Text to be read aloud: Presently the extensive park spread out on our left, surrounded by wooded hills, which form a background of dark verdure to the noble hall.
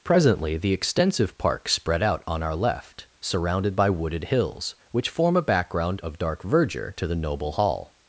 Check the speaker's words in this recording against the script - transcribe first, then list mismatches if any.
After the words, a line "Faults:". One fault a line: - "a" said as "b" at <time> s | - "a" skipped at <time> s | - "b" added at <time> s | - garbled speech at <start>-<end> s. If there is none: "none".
Presently the extensive park spread out on our left, surrounded by wooded hills, which form a background of dark verdure to the noble hall.
Faults:
none